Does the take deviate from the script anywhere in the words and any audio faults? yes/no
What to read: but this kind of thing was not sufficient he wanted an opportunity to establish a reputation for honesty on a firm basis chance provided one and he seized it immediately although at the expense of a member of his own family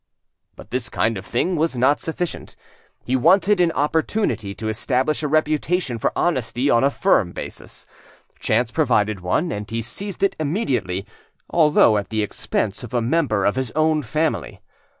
no